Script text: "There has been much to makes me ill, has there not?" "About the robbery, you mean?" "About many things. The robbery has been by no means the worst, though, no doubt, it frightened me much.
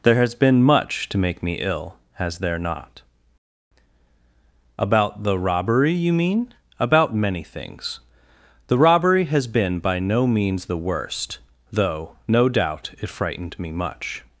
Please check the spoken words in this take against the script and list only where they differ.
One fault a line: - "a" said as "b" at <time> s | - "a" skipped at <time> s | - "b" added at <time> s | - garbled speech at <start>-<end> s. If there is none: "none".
- "makes" said as "make" at 1.2 s